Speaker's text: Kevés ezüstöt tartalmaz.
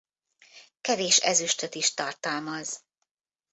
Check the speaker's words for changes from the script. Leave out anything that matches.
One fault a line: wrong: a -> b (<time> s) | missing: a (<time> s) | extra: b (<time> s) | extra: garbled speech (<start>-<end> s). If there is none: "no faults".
extra: is (1.8 s)